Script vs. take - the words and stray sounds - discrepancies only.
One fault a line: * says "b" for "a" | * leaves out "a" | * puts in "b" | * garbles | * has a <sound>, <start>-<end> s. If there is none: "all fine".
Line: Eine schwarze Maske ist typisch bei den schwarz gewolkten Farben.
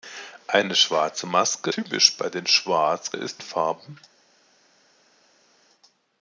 * leaves out "ist"
* says "ist" for "gewolkten"